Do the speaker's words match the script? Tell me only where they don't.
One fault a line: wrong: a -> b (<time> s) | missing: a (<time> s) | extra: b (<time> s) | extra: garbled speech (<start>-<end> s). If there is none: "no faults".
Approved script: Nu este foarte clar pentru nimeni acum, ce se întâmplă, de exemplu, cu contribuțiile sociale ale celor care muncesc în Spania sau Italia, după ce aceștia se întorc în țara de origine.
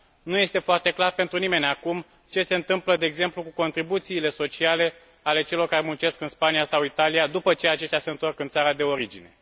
no faults